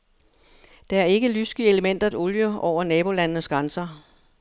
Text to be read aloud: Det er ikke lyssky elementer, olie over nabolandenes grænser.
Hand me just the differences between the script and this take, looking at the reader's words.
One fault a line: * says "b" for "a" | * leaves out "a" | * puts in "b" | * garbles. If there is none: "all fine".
all fine